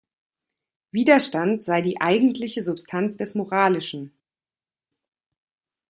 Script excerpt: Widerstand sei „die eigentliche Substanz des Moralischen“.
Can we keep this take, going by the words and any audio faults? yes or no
yes